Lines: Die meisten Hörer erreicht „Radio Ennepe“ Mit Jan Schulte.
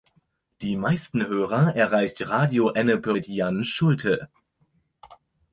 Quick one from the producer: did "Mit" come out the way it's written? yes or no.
yes